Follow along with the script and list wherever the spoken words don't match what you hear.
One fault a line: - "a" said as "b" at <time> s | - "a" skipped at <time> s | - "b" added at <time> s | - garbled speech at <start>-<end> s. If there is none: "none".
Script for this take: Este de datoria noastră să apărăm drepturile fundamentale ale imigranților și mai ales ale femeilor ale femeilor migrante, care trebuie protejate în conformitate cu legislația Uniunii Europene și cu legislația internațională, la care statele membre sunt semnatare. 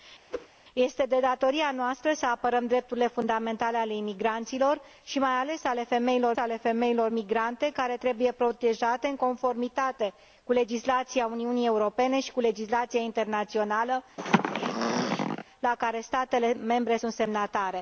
none